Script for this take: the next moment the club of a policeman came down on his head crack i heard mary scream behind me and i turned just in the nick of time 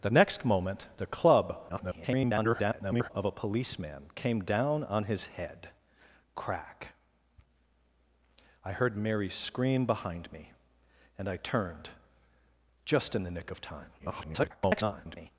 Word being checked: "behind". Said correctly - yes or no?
yes